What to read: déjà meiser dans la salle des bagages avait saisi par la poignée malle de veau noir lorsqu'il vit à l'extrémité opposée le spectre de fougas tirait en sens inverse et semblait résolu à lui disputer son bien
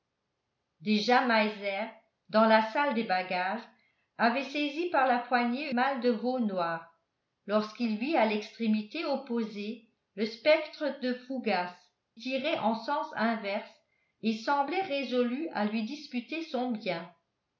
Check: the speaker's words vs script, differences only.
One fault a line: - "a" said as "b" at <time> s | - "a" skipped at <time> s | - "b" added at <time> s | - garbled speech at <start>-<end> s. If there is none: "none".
none